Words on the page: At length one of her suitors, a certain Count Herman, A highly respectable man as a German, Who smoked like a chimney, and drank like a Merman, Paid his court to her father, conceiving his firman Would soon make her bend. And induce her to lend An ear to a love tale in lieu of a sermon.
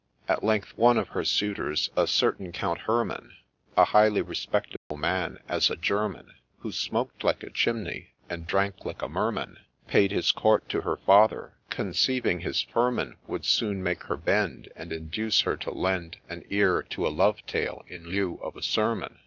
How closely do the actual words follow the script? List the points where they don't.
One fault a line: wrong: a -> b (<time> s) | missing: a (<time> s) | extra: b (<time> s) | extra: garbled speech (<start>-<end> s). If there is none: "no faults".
no faults